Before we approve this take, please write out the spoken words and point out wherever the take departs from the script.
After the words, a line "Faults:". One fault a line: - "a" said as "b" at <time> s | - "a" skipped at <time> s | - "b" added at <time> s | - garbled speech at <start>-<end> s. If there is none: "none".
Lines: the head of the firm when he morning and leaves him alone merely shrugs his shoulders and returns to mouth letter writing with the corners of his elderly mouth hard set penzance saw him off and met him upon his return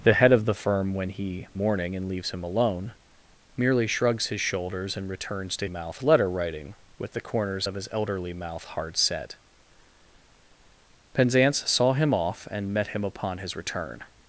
the head of the firm when he morning and leaves him alone merely shrugs his shoulders and returns to mouth letter writing with the corners of his elderly mouth hard set penzance saw him off and met him upon his return
Faults:
none